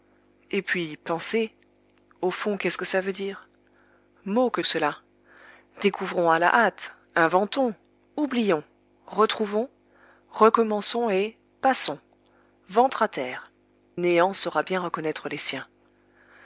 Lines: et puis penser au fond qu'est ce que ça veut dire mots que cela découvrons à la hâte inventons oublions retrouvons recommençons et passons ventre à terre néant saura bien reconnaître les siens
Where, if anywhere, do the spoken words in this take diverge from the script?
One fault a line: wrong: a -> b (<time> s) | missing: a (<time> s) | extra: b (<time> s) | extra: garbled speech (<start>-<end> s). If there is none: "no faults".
no faults